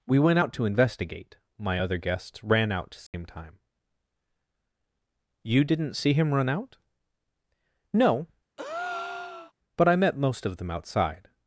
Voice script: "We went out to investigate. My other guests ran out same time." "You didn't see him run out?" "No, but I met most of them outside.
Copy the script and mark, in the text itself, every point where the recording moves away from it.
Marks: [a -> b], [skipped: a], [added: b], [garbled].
"We went out to investigate. My other guests ran out same time." "You didn't see him run out?" "No, but I met most of them outside.